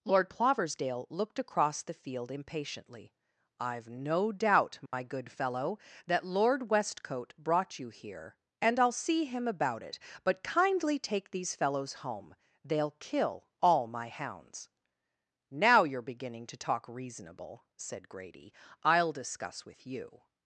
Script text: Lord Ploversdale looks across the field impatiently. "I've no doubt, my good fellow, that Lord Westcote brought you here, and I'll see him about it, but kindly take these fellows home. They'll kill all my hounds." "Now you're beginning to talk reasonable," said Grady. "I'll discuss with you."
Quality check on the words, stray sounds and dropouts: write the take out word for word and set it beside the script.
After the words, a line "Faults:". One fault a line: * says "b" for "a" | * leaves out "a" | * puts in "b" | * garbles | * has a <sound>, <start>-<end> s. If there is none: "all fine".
Lord Ploversdale looked across the field impatiently. "I've no doubt, my good fellow, that Lord Westcote brought you here, and I'll see him about it, but kindly take these fellows home. They'll kill all my hounds." "Now you're beginning to talk reasonable," said Grady. "I'll discuss with you."
Faults:
* says "looked" for "looks"
* has a dropout, 4.9-4.9 s